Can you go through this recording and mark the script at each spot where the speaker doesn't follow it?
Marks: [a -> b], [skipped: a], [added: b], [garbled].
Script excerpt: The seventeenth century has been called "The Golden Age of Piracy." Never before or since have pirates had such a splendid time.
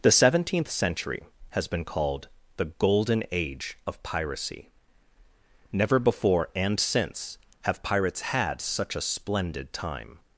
The seventeenth century has been called "The Golden Age of Piracy." Never before [or -> and] since have pirates had such a splendid time.